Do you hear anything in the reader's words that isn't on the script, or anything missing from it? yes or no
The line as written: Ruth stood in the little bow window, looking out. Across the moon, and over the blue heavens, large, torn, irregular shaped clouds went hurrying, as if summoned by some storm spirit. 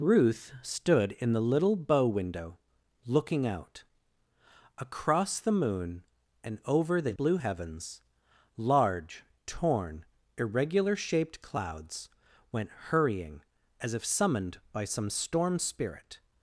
no